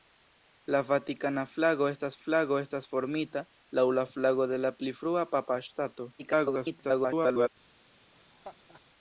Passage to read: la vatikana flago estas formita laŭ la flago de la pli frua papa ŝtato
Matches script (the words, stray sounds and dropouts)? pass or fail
fail